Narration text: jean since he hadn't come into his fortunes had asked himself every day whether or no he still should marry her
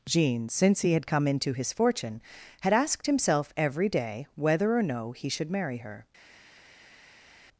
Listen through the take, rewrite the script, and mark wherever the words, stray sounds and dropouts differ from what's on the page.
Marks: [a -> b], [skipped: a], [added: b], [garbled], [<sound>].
jean since he [hadn't -> had] come into his [fortunes -> fortune] had asked himself every day whether or no he [skipped: still] should marry her